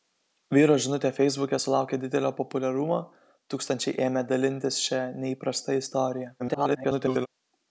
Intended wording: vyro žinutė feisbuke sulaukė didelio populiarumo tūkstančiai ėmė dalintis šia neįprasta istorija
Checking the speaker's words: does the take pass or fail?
fail